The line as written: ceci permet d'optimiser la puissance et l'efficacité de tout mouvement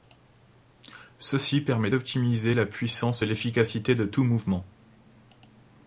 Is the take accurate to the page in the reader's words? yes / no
yes